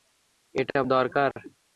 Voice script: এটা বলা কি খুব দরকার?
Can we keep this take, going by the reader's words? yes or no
no